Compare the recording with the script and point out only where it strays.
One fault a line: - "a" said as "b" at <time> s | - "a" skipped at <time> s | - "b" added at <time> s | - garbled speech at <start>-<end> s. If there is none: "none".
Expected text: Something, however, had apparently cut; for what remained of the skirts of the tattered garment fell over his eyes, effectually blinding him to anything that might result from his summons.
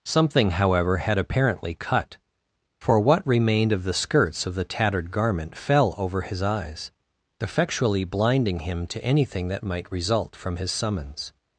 none